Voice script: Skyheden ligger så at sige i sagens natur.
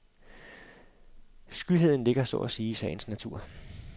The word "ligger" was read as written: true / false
true